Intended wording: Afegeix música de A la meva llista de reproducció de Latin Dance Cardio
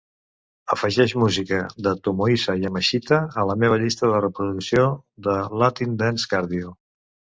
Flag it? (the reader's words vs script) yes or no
yes